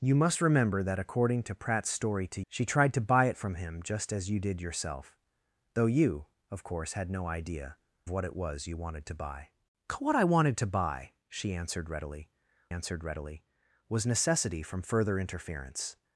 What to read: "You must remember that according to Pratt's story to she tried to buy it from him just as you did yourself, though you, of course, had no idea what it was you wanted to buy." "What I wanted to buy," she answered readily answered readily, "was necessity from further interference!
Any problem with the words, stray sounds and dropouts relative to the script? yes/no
no